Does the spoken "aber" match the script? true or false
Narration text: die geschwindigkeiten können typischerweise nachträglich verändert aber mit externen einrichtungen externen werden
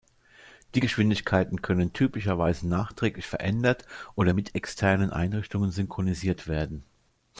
false